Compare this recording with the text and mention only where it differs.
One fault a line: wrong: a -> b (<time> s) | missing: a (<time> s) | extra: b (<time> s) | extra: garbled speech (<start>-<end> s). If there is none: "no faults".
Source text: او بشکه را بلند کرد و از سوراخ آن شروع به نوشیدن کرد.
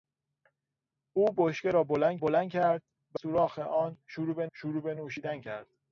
extra: بلند (2.2 s)
missing: از (3.2 s)
extra: شروع به (4.5 s)